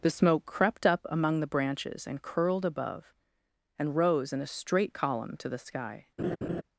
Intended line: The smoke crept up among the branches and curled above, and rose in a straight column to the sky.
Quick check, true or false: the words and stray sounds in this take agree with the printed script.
false